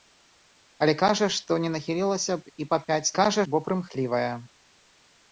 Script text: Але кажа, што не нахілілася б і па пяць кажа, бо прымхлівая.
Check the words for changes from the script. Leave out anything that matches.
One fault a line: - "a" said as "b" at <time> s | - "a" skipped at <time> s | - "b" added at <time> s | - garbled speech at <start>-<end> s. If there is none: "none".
none